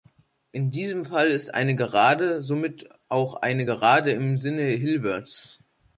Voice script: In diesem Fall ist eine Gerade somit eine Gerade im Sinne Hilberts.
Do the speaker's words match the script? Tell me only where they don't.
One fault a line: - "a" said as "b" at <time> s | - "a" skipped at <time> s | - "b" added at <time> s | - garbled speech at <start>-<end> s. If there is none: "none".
- "auch" added at 3.1 s